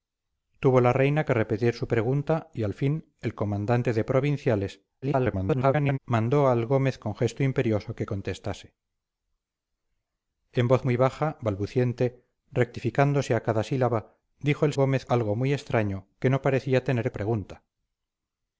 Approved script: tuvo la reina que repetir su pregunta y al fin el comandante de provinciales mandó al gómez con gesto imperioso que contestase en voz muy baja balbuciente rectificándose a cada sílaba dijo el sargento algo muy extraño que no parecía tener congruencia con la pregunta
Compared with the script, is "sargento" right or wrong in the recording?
wrong